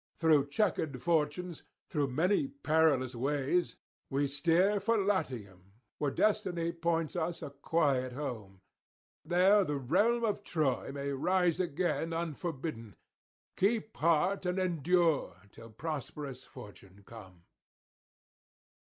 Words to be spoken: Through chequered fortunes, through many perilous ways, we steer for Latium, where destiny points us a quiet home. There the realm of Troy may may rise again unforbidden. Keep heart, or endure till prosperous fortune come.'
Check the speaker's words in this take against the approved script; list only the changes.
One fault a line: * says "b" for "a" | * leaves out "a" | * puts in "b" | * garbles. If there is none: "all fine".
* leaves out "may"
* says "and" for "or"